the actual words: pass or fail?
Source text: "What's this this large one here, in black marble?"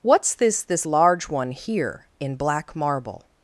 pass